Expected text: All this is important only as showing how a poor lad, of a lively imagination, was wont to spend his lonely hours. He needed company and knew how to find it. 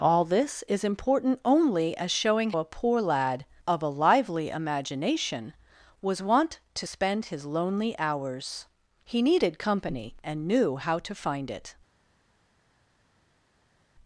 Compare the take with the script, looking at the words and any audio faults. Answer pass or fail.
fail